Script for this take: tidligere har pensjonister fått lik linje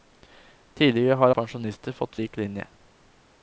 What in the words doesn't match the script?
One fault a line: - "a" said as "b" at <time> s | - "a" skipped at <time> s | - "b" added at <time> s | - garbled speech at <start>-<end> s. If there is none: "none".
none